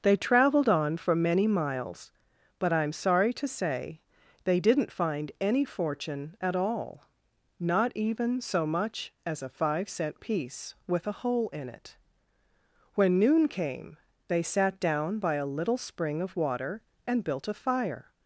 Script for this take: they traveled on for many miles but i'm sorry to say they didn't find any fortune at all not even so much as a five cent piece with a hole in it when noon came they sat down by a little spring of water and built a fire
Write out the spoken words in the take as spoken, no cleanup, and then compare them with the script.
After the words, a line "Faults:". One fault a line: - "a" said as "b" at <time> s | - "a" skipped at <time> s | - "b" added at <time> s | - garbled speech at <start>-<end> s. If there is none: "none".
they traveled on for many miles but i'm sorry to say they didn't find any fortune at all not even so much as a five cent piece with a hole in it when noon came they sat down by a little spring of water and built a fire
Faults:
none